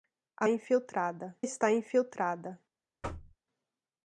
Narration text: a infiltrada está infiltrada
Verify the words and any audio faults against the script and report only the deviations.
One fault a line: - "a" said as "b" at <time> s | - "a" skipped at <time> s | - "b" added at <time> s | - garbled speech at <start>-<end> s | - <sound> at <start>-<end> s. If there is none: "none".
- thud at 3.0-3.4 s